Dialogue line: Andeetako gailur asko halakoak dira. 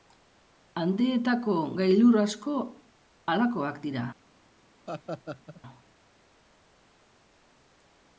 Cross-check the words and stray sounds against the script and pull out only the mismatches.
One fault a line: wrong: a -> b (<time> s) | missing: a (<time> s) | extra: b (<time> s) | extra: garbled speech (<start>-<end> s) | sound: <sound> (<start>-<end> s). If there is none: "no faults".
sound: laugh (4.9-5.6 s)